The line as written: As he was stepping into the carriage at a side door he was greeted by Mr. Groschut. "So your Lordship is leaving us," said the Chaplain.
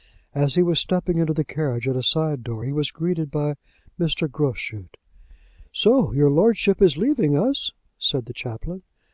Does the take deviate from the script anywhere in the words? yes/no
no